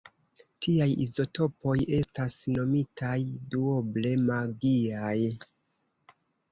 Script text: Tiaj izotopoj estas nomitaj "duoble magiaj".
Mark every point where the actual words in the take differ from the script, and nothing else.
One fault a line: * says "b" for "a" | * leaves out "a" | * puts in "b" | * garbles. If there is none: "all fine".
all fine